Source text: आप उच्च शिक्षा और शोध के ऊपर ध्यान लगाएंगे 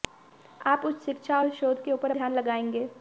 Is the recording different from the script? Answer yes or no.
no